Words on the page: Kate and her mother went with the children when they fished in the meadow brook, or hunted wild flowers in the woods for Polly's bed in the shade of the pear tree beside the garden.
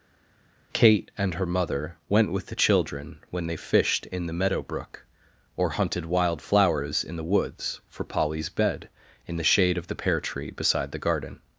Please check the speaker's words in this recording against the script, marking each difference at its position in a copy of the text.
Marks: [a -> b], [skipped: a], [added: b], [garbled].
Kate and her mother went with the children when they fished in the meadow brook, or hunted wild flowers in the woods for Polly's bed in the shade of the pear tree beside the garden.